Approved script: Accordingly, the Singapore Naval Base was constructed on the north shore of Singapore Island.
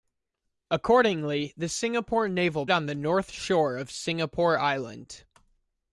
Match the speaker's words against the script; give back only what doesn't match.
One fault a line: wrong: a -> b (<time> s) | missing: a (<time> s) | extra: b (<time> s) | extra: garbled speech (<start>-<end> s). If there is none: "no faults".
missing: Base was constructed (2.6 s)